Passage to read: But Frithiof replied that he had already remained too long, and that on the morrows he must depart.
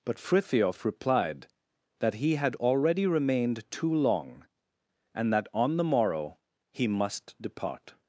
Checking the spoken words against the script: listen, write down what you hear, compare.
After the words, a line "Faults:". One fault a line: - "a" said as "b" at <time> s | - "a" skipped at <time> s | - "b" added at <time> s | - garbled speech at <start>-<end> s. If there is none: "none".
But Frithiof replied that he had already remained too long, and that on the morrow he must depart.
Faults:
- "morrows" said as "morrow" at 5.8 s